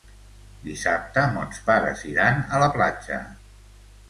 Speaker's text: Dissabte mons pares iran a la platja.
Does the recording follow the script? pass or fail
pass